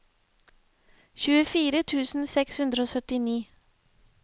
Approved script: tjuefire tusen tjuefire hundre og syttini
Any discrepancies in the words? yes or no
yes